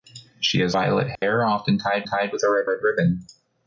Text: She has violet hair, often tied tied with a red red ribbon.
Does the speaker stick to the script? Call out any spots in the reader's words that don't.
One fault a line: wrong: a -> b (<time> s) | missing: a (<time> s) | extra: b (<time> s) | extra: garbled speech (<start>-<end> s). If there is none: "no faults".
no faults